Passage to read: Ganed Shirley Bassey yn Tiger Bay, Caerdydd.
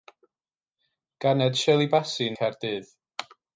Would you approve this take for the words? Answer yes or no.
no